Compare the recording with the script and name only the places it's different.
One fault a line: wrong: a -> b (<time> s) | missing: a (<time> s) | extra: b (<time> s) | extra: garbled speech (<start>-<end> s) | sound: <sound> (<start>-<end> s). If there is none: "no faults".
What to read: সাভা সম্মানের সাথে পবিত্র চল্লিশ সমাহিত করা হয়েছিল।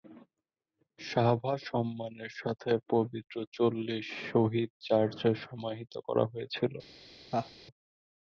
extra: শহীদ চার্চে (4.3 s)
sound: laugh (7.3-7.5 s)